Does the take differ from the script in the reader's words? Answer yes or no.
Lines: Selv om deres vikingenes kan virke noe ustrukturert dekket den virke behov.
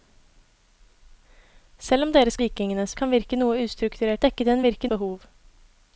no